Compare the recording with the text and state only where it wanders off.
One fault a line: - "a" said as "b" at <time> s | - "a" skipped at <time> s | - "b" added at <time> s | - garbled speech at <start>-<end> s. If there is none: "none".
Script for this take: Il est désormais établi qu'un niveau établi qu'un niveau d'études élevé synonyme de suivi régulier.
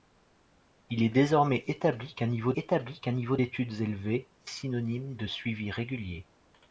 none